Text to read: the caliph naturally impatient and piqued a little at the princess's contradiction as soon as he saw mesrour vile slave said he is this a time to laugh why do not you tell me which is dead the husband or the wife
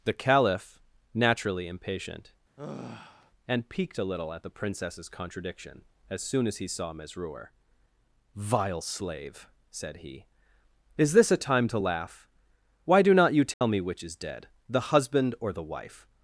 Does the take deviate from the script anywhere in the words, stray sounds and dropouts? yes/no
yes